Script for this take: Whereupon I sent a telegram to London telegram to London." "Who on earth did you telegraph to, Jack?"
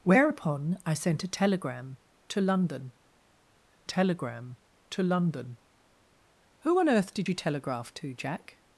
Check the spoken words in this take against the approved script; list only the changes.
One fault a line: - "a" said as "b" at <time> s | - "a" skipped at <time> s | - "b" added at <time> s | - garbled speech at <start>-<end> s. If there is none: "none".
none